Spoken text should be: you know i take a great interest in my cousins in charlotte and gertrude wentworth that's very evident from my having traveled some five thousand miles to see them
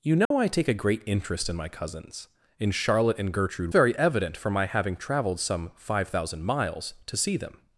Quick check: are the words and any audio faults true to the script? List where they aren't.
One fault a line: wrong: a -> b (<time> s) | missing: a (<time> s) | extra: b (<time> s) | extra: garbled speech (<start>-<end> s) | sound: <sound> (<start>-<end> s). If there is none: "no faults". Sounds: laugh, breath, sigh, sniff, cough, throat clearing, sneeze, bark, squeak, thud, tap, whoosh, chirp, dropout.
sound: dropout (0.2-0.3 s)
missing: wentworth that's (3.7 s)